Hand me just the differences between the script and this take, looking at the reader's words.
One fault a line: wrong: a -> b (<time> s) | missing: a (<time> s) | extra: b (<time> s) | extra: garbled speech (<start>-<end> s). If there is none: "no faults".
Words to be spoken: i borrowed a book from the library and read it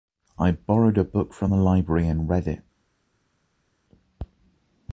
no faults